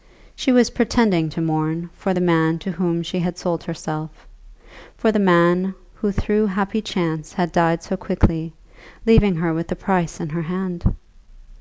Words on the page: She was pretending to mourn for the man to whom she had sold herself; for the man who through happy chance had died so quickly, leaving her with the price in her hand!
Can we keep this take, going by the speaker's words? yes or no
yes